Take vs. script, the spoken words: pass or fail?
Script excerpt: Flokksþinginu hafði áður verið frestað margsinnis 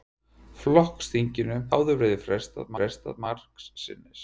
fail